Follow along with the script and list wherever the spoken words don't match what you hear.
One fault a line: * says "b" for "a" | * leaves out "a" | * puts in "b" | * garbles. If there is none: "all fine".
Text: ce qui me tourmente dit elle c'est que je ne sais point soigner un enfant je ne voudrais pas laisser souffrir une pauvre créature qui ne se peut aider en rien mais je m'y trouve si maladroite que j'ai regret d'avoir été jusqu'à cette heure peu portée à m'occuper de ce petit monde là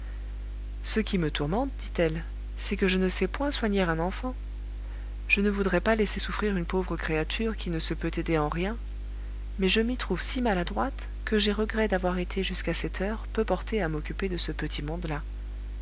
all fine